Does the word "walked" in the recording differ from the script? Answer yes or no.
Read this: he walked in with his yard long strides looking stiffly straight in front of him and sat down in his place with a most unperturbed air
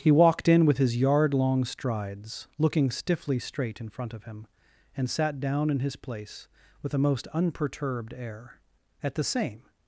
no